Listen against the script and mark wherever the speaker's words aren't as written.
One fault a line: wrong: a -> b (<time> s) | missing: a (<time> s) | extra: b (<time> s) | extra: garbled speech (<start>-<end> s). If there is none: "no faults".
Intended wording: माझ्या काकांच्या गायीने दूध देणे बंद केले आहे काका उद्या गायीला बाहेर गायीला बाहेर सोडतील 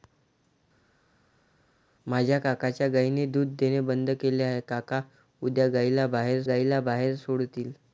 no faults